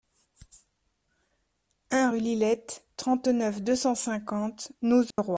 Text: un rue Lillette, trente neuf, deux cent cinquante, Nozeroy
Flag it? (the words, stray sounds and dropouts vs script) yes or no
yes